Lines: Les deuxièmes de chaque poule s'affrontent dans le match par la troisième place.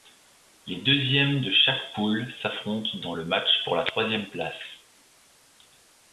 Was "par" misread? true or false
true